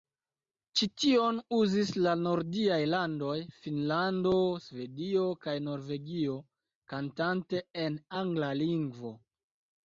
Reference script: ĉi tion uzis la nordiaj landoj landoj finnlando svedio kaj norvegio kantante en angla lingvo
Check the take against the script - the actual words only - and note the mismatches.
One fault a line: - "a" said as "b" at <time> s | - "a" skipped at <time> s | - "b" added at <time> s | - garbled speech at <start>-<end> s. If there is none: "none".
- "landoj" skipped at 3.4 s